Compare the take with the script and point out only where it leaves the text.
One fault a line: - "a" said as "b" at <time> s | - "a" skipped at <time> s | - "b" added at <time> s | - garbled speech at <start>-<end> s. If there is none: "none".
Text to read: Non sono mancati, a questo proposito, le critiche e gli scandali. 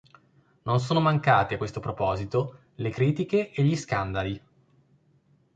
none